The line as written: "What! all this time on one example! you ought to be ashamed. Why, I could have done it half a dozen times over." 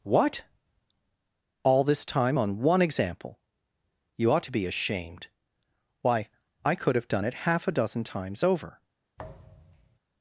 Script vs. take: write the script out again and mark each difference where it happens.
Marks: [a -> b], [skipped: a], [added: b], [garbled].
"What! all this time on one example! you ought to be ashamed. Why, I could have done it half a dozen times over."